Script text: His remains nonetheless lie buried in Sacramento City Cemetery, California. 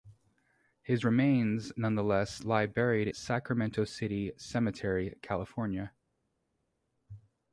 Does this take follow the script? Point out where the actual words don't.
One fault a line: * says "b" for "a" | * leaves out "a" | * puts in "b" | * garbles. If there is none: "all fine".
* leaves out "in"